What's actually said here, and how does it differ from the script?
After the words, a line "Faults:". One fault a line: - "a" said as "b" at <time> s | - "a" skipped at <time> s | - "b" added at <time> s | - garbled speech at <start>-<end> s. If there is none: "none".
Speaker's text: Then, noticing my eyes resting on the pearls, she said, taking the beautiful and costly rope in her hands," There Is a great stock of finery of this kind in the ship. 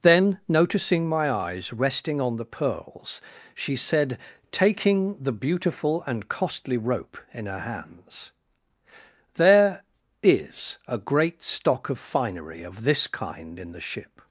Then, noticing my eyes resting on the pearls, she said, taking the beautiful and costly rope in her hands," There Is a great stock of finery of this kind in the ship.
Faults:
none